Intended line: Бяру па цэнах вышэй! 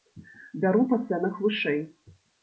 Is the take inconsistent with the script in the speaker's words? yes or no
no